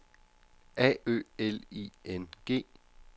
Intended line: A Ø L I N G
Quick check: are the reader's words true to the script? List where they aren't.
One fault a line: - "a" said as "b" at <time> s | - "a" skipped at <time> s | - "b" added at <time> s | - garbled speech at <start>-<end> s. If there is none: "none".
none